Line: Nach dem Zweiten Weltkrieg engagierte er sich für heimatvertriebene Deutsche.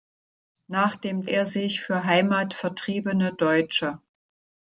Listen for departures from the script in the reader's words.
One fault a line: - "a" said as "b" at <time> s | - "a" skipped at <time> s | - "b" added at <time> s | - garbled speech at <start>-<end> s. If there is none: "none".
- "Zweiten Weltkrieg engagierte" skipped at 1.2 s